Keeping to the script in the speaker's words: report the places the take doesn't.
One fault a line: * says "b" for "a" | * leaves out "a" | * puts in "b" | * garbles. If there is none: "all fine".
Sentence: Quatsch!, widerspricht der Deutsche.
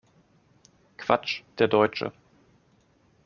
* leaves out "widerspricht"